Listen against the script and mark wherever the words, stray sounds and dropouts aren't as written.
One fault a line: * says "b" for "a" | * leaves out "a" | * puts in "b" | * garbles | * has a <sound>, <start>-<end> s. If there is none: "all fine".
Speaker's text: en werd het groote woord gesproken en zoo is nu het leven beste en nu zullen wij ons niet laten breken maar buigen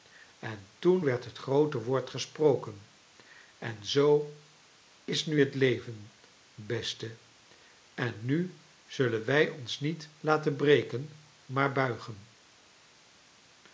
* puts in "toen"